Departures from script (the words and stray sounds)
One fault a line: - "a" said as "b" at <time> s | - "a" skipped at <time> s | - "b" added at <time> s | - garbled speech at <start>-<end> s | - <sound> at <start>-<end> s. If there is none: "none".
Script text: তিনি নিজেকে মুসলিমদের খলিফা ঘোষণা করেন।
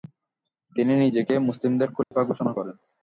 - dropout at 2.0-2.1 s